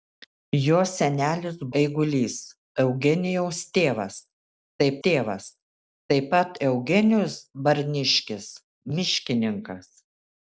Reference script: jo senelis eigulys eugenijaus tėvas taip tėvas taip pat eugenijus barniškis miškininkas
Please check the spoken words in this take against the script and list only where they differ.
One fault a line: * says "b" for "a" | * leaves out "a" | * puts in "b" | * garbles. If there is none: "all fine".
all fine